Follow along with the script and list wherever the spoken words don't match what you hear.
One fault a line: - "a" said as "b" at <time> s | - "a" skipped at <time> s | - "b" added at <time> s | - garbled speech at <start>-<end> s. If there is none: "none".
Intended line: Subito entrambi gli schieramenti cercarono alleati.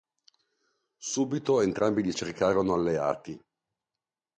- "schieramenti" skipped at 2.1 s